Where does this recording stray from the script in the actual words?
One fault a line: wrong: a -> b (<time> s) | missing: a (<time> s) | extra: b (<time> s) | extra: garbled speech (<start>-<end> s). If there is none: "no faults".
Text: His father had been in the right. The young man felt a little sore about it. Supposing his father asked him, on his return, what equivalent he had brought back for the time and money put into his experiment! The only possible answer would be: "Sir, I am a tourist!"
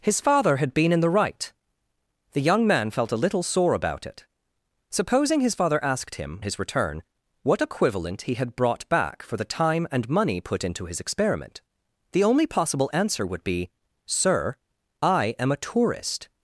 missing: on (6.4 s)